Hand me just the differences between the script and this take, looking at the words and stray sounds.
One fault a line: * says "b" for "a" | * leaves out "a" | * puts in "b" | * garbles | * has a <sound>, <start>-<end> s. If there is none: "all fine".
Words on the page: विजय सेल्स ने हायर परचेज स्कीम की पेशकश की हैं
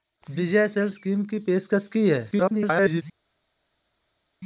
* leaves out "ने हायर परचेज"
* garbles